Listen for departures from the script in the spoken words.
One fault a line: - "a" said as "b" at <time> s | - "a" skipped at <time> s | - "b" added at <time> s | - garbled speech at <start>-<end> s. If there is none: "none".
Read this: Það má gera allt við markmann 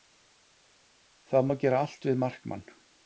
none